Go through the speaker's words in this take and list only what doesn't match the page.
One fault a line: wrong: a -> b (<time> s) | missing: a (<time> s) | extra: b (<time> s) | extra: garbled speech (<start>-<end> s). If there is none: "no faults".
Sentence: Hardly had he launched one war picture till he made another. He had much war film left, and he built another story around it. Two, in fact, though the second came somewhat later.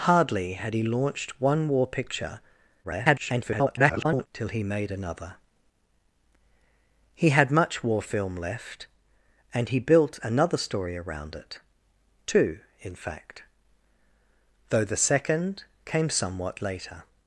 extra: garbled speech (2.8-4.3 s)